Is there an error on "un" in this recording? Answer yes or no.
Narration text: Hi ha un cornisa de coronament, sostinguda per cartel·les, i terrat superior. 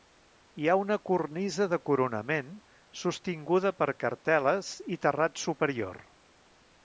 yes